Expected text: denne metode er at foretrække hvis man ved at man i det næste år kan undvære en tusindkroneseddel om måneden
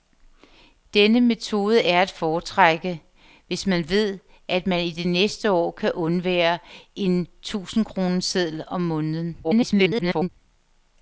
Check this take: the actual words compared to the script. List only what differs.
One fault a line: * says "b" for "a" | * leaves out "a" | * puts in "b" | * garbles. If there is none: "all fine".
* garbles